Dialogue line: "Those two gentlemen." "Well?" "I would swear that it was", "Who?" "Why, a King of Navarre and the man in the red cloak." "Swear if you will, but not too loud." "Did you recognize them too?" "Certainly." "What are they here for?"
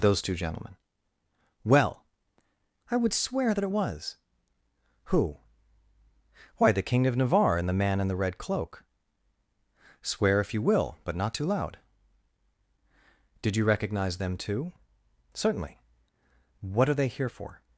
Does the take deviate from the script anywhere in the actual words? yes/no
yes